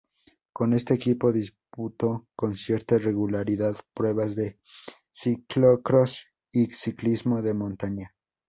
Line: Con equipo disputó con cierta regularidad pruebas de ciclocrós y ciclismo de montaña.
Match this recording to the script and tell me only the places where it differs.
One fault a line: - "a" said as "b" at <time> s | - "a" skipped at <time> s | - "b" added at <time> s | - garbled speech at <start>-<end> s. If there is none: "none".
- "este" added at 0.7 s